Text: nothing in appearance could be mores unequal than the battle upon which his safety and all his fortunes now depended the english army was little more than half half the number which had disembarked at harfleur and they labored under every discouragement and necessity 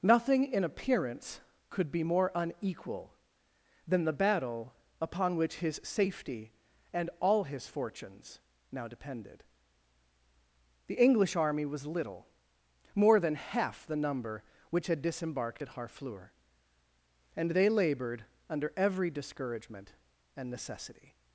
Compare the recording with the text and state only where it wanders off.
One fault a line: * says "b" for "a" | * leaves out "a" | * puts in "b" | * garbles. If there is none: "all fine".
* says "more" for "mores"
* leaves out "half"